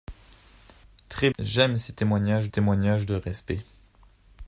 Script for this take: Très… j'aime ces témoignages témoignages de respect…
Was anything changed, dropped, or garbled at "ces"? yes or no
no